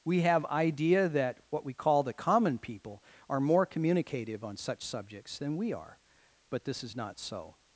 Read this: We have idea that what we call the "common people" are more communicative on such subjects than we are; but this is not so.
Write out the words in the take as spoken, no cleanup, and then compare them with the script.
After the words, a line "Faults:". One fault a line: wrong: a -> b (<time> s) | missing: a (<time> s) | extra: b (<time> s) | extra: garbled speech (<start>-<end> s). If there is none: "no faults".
We have idea that what we call the "common people" are more communicative on such subjects than we are; but this is not so.
Faults:
no faults